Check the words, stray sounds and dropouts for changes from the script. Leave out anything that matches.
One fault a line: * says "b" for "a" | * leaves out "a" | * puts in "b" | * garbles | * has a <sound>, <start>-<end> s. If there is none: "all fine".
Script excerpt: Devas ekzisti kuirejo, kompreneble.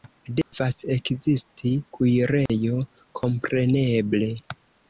* has a dropout, 0.4-0.5 s
* has a dropout, 2.5-2.5 s